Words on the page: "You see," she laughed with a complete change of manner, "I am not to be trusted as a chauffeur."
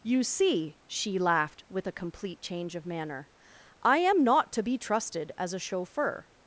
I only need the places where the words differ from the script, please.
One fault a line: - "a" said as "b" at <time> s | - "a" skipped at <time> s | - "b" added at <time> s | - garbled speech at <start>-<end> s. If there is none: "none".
none